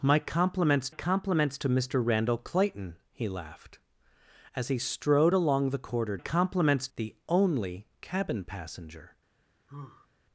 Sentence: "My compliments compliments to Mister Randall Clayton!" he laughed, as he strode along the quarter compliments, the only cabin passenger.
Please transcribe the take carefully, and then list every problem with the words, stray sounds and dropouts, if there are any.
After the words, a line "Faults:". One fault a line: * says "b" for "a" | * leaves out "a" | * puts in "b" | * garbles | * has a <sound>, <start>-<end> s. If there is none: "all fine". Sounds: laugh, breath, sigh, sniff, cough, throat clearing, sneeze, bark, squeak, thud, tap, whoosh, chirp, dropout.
"My compliments compliments to Mister Randall Clayton!" he laughed, as he strode along the quarter compliments, the only cabin passenger.
Faults:
* has a sigh, 9.7-10.1 s